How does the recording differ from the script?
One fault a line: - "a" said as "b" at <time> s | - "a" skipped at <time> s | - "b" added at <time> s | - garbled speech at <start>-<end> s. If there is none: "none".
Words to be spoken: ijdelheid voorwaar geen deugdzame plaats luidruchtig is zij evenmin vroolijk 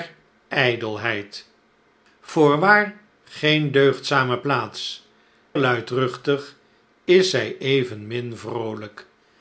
none